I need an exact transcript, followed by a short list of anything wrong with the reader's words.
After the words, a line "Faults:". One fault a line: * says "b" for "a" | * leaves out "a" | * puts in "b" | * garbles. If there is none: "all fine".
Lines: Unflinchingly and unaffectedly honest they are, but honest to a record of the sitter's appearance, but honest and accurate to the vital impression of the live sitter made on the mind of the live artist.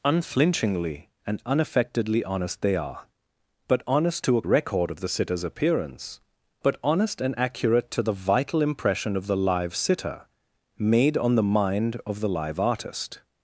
Unflinchingly and unaffectedly honest they are, but honest to a record of the sitter's appearance, but honest and accurate to the vital impression of the live sitter made on the mind of the live artist.
Faults:
all fine